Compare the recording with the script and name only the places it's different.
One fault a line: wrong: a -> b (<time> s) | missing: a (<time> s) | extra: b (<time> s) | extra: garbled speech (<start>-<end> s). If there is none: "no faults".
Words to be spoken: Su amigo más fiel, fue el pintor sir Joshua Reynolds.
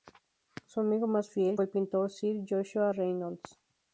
no faults